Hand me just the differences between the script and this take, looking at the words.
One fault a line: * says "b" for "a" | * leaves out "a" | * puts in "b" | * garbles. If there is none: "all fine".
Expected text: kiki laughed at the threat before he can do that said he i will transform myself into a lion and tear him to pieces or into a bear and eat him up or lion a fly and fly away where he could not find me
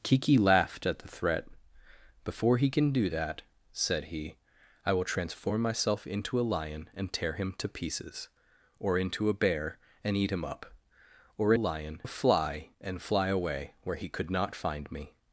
all fine